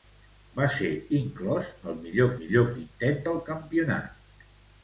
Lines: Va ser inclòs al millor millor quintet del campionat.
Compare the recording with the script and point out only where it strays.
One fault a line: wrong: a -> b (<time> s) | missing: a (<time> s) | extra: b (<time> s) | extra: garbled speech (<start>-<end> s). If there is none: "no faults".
no faults